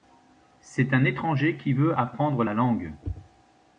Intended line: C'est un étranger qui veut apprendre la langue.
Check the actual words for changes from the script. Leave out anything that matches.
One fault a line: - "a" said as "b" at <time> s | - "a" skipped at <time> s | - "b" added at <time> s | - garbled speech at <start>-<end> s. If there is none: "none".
none